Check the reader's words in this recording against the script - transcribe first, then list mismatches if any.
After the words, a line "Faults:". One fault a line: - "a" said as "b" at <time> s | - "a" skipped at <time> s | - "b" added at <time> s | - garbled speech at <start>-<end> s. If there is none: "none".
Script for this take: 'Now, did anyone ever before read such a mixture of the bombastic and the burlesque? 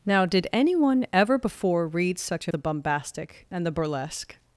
'Now, did anyone ever before read such a the bombastic and the burlesque?
Faults:
- "mixture of" skipped at 2.5 s